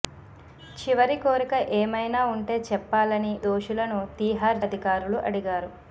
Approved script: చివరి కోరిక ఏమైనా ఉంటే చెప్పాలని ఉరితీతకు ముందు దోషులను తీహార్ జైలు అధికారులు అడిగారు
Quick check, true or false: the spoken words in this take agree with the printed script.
false